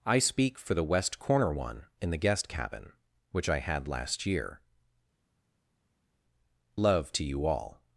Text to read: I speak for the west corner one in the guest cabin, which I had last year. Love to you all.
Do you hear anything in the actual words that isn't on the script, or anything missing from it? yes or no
no